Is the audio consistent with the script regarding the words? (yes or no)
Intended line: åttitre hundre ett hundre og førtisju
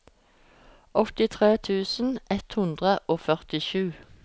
no